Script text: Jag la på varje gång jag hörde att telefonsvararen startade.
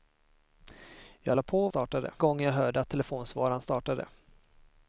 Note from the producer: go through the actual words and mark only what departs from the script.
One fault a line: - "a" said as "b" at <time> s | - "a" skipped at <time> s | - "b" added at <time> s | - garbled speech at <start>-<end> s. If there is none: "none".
- "varje" said as "startade" at 1.7 s